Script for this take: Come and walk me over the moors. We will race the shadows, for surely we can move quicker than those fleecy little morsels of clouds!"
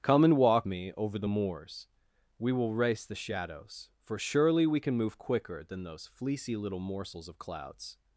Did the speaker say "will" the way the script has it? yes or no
yes